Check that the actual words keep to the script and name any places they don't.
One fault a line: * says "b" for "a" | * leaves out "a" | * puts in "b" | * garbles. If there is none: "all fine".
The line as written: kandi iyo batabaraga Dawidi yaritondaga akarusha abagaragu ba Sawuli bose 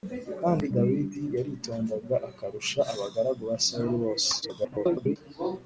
* leaves out "iyo batabaraga"
* garbles